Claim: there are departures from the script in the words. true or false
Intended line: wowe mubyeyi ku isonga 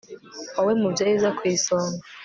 true